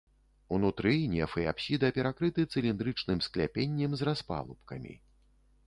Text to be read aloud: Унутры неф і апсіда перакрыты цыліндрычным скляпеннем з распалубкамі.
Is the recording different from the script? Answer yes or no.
no